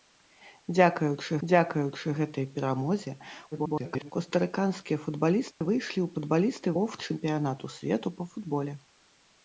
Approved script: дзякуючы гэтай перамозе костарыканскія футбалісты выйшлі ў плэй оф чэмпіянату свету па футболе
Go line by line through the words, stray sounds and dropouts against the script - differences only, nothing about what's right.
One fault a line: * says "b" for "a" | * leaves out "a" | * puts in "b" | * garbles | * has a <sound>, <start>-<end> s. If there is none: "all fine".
* puts in "дзякуючы"
* garbles
* has a dropout, 5.5-5.6 s
* says "футбалісты" for "плэй"